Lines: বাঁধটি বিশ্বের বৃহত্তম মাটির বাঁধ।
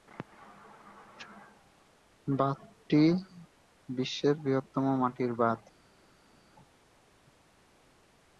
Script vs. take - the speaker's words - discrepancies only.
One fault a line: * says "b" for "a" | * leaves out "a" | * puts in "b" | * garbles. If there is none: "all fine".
all fine